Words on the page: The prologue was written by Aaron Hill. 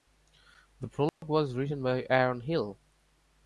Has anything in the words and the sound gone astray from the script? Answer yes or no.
yes